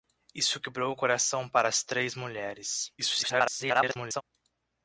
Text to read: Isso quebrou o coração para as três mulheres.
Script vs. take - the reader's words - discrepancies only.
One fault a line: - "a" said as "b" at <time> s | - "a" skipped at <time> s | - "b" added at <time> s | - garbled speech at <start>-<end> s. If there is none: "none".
- garbled speech at 3.0-4.2 s